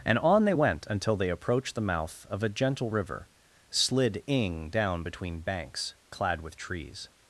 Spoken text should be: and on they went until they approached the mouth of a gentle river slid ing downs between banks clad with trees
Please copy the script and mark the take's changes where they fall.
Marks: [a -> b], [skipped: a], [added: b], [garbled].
and on they went until they approached the mouth of a gentle river slid ing [downs -> down] between banks clad with trees